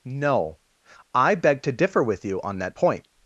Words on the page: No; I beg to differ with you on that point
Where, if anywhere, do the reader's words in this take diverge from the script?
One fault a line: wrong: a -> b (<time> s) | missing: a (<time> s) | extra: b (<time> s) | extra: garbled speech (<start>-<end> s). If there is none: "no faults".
no faults